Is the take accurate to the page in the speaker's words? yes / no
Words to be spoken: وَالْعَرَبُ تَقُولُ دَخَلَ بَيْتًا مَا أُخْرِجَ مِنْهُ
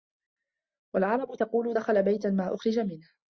yes